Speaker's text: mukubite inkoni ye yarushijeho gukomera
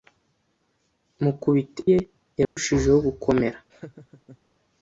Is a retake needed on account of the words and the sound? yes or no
yes